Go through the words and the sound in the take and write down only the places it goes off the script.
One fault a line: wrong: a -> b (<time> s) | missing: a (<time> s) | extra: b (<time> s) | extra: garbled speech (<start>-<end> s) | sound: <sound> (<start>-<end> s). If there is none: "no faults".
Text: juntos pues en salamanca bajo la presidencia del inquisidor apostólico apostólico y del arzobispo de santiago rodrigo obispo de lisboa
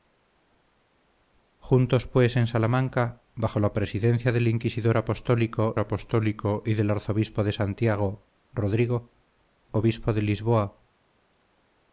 no faults